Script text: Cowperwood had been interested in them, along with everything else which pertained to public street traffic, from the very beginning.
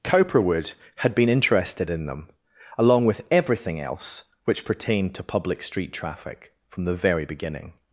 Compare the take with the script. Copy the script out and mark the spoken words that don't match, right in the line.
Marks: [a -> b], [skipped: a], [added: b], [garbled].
Cowperwood had been interested in them, along with everything else which pertained to public street traffic, from the very beginning.